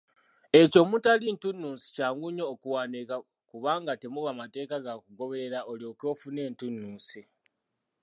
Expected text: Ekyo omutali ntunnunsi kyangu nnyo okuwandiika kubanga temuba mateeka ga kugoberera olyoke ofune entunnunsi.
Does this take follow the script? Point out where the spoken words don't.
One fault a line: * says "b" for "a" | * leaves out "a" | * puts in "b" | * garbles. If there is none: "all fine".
all fine